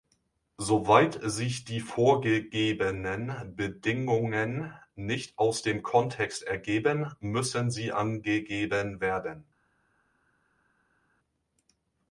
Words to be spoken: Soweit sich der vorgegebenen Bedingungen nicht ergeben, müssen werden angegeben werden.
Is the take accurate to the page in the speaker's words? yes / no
no